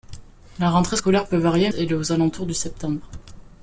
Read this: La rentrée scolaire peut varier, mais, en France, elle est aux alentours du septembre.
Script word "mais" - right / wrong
wrong